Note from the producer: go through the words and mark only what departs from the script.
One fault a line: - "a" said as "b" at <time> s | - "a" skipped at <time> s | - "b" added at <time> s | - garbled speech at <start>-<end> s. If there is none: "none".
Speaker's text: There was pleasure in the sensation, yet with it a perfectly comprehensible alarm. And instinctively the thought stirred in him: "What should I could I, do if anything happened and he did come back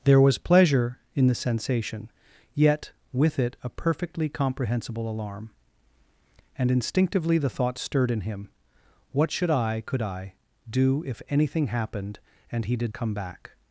none